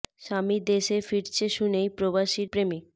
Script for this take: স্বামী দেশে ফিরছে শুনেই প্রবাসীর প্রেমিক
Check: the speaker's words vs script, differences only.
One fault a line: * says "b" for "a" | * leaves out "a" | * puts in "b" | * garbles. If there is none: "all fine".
all fine